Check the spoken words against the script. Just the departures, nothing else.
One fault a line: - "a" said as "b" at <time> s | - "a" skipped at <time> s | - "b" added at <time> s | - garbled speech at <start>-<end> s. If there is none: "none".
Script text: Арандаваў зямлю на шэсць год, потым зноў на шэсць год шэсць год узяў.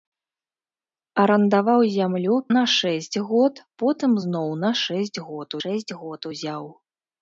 none